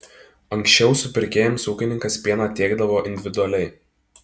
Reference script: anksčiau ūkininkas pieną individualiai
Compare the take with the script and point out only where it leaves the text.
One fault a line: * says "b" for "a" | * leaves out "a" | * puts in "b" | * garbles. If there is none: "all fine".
* puts in "supirkėjams"
* puts in "tiekdavo"